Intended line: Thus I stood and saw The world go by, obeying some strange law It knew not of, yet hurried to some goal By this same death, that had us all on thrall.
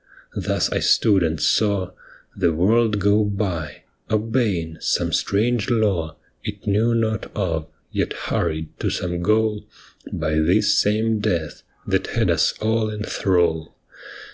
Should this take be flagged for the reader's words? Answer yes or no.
yes